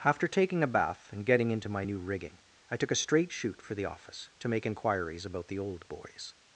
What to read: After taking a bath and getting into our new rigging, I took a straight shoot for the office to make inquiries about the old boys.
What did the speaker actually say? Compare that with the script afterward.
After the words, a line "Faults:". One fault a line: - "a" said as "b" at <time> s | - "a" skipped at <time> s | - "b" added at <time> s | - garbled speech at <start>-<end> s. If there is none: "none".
After taking a bath and getting into my new rigging, I took a straight shoot for the office to make inquiries about the old boys.
Faults:
- "our" said as "my" at 1.7 s